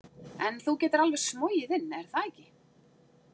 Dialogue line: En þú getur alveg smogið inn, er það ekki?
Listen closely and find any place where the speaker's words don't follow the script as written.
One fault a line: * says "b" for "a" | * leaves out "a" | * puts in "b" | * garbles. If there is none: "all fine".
all fine